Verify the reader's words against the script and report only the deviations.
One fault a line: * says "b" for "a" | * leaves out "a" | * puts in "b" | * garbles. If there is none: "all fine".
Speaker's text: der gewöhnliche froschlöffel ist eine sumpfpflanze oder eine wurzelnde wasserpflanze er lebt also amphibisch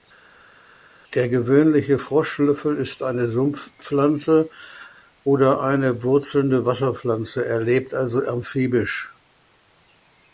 all fine